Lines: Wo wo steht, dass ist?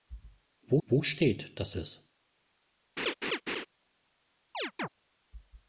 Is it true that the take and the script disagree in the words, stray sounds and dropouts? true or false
true